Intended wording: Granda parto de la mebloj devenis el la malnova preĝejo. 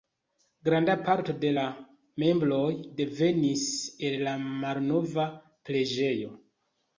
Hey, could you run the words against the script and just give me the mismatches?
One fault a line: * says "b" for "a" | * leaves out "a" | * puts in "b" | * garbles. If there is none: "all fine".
all fine